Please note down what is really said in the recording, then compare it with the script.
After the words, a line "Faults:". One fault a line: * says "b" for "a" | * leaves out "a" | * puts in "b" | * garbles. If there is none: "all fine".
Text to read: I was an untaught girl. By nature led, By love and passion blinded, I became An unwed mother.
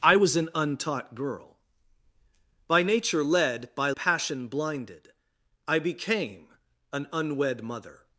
I was an untaught girl. By nature led, By passion blinded, I became An unwed mother.
Faults:
* leaves out "love and"